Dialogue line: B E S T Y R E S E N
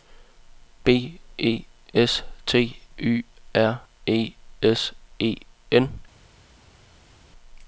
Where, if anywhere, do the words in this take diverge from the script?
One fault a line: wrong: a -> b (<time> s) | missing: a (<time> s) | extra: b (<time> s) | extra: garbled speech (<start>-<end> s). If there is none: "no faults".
no faults